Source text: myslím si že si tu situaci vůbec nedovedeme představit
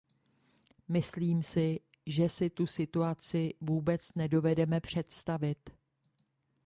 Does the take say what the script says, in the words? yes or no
yes